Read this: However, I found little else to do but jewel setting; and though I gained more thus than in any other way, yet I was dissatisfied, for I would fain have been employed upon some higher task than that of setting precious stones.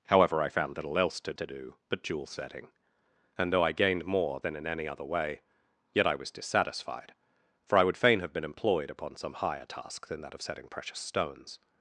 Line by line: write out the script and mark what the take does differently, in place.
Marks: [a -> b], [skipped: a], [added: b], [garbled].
However, I found little else to [added: to] do but jewel setting; and though I gained more [skipped: thus] than in any other way, yet I was dissatisfied, for I would fain have been employed upon some higher task than that of setting precious stones.